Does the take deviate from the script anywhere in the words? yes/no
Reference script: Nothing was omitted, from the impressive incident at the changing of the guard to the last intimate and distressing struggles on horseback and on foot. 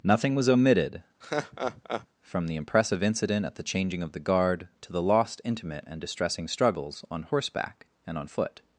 yes